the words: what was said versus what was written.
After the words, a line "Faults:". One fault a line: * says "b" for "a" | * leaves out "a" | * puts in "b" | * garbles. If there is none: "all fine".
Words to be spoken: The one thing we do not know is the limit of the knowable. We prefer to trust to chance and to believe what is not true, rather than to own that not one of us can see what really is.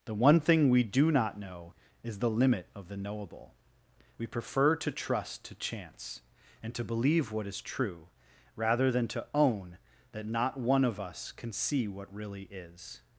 The one thing we do not know is the limit of the knowable. We prefer to trust to chance and to believe what is true, rather than to own that not one of us can see what really is.
Faults:
* leaves out "not"